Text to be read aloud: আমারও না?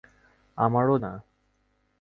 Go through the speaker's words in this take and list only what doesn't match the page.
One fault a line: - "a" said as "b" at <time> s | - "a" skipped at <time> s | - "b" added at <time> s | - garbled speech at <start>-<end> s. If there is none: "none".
none